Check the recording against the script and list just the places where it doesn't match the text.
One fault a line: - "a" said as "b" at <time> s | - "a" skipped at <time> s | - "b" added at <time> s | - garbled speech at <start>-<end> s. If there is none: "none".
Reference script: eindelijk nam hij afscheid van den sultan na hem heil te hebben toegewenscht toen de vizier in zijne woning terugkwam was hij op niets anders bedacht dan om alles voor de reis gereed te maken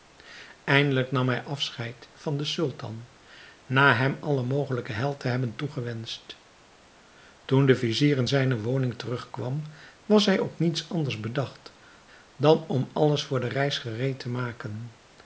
- "alle mogelijke" added at 4.2 s